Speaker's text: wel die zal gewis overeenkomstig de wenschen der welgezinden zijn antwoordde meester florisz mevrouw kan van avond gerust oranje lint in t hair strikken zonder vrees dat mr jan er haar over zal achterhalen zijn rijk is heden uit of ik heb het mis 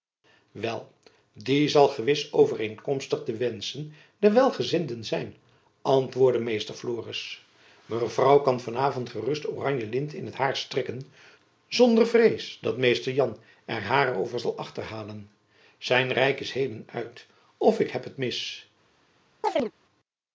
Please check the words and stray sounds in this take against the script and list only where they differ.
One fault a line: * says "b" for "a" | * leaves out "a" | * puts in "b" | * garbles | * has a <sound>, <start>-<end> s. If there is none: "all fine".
* has a chirp, 19.4-19.7 s